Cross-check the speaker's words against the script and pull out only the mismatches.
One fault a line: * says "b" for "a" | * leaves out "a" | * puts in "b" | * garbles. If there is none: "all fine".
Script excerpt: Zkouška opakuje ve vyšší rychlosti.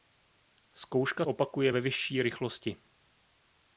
all fine